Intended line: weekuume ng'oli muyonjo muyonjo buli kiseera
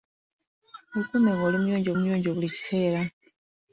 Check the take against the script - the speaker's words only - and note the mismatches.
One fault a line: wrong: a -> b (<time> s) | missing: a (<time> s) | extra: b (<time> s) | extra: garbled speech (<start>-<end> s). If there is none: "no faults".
no faults